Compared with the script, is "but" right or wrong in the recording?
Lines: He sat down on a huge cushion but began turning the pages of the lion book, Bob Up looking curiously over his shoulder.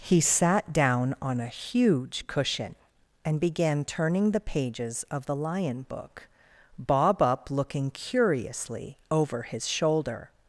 wrong